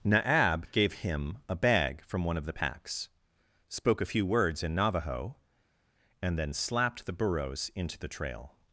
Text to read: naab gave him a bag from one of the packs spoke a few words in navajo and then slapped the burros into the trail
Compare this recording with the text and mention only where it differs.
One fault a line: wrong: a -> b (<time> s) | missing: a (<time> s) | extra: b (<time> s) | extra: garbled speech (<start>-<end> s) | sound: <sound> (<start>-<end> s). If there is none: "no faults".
no faults